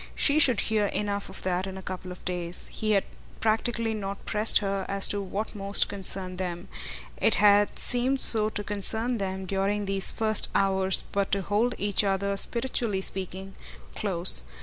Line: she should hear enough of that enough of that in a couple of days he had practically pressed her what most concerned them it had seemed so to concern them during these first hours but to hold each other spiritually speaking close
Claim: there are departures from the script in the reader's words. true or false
true